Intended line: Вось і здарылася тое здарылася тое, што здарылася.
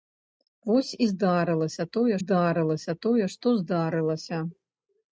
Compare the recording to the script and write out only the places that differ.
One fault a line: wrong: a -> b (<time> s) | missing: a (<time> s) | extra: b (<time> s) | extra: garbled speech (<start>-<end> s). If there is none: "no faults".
no faults